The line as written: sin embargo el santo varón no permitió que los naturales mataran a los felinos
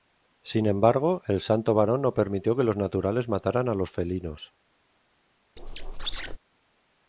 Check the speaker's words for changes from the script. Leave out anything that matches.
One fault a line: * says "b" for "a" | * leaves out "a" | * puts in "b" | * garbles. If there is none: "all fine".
all fine